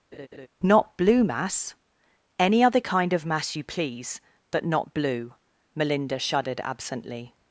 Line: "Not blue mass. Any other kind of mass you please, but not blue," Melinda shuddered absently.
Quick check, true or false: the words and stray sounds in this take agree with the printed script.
false